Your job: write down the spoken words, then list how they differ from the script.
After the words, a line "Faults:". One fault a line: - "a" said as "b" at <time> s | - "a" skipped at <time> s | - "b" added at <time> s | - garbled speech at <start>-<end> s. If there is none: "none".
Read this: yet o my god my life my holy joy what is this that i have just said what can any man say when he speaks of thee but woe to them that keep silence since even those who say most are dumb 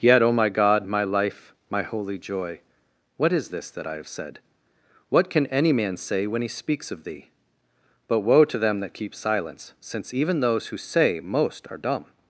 yet o my god my life my holy joy what is this that i have said what can any man say when he speaks of thee but woe to them that keep silence since even those who say most are dumb
Faults:
- "just" skipped at 4.1 s